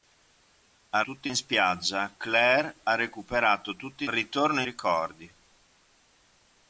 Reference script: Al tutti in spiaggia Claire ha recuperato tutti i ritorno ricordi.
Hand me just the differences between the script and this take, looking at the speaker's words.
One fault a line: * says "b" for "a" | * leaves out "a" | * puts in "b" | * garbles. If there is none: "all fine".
all fine